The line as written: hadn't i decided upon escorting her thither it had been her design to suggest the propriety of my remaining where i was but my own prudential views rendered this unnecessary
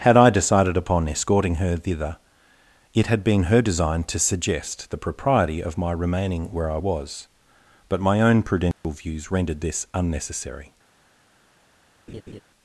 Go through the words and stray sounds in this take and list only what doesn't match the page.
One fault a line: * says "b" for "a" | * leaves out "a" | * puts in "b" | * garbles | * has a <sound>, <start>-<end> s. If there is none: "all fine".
* says "had" for "hadn't"
* has a dropout, 8.7-8.8 s
* has a laugh, 12.1-12.4 s